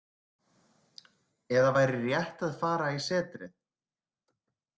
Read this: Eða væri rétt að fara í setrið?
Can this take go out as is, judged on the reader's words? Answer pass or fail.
pass